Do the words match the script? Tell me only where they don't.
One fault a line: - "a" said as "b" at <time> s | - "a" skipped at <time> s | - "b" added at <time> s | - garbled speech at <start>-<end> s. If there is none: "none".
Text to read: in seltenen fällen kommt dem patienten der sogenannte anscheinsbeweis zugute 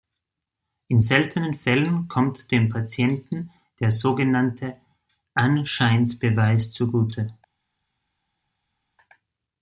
none